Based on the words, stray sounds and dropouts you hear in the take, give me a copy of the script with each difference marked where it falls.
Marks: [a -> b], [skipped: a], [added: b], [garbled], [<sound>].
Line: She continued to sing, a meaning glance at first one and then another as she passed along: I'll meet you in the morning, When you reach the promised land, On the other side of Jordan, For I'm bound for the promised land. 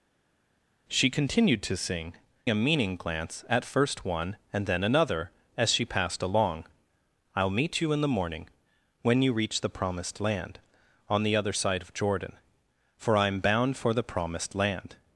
She continued to sing, a meaning glance at first one and then another as she passed along: I'll meet you in the morning, When you reach the promised land, On the other side of Jordan, For I'm bound for the promised land.